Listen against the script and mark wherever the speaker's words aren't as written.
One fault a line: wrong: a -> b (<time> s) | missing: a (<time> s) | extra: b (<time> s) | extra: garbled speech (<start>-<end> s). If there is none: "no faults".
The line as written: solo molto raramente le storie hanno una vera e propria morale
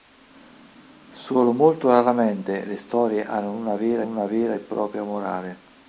extra: una vera (4.0 s)